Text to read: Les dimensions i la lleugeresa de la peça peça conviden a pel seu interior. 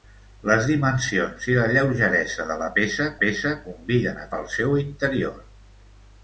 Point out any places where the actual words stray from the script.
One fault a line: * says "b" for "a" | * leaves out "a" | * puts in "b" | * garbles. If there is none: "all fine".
all fine